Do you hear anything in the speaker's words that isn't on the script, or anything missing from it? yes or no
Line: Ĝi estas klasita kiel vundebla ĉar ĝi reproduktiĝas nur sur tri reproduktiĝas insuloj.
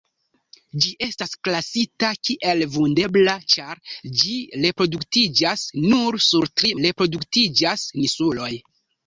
no